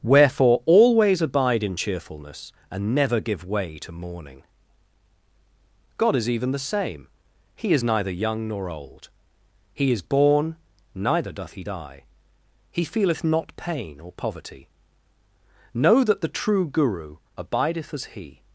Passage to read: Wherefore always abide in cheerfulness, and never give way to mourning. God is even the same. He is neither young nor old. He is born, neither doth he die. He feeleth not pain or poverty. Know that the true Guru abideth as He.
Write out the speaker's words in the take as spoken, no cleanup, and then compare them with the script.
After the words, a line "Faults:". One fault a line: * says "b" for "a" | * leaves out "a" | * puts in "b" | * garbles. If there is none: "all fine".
Wherefore always abide in cheerfulness, and never give way to mourning. God is even the same. He is neither young nor old. He is born, neither doth he die. He feeleth not pain or poverty. Know that the true Guru abideth as He.
Faults:
all fine